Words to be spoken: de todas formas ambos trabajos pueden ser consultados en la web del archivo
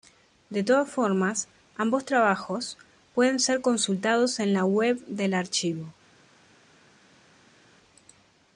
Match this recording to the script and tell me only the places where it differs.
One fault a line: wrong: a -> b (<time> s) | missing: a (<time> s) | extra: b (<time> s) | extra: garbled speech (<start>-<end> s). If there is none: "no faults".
no faults